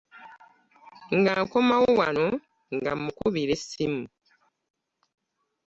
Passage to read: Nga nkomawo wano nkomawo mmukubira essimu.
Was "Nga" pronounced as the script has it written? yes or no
yes